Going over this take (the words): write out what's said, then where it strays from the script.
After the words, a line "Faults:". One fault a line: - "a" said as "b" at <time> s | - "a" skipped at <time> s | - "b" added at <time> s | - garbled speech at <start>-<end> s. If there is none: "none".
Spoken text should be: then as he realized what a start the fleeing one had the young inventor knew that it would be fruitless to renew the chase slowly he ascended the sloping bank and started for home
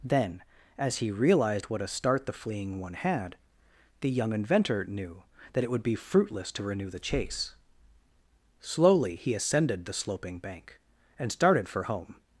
then as he realized what a start the fleeing one had the young inventor knew that it would be fruitless to renew the chase slowly he ascended the sloping bank and started for home
Faults:
none